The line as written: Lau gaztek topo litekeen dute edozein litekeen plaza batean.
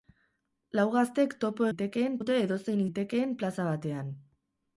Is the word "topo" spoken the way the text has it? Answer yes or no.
yes